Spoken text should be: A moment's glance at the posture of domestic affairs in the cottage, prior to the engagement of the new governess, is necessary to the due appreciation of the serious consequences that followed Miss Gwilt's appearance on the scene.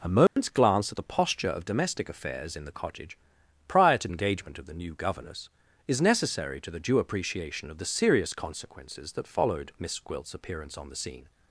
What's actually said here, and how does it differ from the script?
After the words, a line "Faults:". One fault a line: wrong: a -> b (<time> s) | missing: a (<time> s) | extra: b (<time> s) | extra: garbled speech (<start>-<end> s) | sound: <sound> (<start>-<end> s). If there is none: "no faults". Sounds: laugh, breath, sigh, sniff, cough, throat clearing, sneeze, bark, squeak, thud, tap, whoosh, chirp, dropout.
A moment's glance at the posture of domestic affairs in the cottage, prior to engagement of the new governess, is necessary to the due appreciation of the serious consequences that followed Miss Gwilt's appearance on the scene.
Faults:
sound: dropout (0.3-0.4 s)
missing: the (4.1 s)